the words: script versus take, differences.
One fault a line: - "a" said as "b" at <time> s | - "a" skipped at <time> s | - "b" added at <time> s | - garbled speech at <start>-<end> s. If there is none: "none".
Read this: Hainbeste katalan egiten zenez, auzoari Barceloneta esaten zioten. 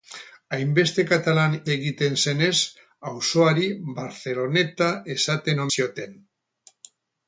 none